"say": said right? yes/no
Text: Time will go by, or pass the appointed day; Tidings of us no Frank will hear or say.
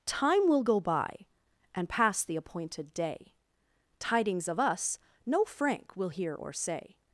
yes